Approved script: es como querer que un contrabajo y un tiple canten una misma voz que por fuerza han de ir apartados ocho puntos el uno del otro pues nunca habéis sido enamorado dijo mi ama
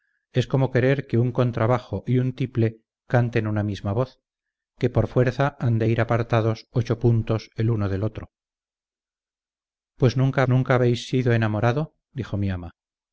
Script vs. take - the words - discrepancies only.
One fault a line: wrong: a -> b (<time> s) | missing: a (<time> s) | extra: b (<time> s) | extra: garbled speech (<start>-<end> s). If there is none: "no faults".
extra: nunca (10.5 s)